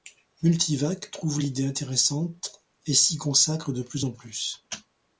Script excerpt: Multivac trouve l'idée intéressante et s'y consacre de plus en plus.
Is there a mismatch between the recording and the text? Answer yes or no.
no